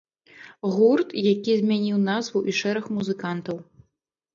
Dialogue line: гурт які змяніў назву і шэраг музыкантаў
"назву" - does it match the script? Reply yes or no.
yes